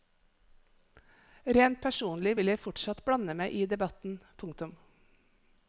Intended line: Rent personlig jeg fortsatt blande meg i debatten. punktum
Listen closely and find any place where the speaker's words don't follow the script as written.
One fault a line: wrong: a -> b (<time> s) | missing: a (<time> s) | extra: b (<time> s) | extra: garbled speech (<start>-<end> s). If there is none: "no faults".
extra: vil (2.4 s)